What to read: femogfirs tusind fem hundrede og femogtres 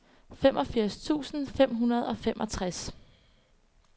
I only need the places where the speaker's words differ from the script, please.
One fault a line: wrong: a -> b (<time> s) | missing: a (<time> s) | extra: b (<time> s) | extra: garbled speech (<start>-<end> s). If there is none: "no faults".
no faults